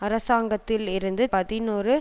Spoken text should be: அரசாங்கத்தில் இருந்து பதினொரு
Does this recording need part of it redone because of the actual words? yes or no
no